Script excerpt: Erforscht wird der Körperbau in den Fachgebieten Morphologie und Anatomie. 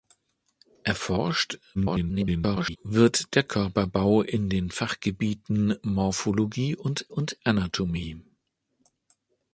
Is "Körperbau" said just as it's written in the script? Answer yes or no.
yes